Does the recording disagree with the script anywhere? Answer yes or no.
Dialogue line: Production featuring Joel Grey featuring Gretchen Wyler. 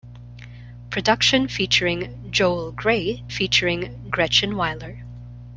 no